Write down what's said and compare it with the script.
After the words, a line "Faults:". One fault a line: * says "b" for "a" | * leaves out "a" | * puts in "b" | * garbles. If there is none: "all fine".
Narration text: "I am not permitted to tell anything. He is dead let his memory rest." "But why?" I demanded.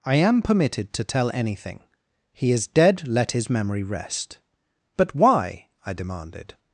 "I am permitted to tell anything. He is dead let his memory rest." "But why?" I demanded.
Faults:
* leaves out "not"